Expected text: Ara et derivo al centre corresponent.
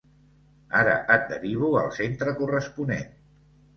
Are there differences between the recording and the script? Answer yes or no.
no